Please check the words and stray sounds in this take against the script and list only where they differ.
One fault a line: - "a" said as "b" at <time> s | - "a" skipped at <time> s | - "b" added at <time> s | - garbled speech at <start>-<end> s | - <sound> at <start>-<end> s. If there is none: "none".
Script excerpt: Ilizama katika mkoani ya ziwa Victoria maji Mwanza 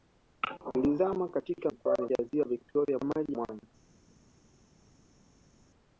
none